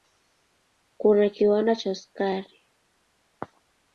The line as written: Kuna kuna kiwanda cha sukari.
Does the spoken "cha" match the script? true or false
true